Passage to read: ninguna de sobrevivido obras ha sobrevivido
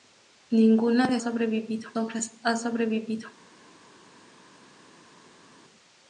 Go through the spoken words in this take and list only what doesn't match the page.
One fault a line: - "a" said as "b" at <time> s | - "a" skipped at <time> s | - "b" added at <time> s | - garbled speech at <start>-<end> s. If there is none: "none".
none